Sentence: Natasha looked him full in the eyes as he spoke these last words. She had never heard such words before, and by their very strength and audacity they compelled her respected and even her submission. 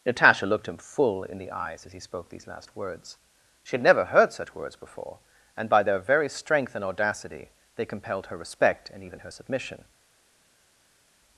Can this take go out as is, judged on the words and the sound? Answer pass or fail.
fail